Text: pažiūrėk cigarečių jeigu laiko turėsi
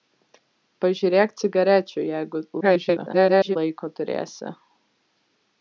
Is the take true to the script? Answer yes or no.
no